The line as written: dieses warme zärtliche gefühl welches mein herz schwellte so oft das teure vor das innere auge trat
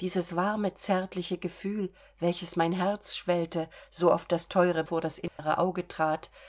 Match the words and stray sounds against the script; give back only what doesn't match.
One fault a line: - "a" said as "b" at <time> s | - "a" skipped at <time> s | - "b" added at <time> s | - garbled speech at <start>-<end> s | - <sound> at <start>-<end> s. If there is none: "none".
- dropout at 5.3-5.4 s